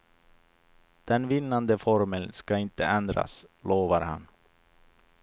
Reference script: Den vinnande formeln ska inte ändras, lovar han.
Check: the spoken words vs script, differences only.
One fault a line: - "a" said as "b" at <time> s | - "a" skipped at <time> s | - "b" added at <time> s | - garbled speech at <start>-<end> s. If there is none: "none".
none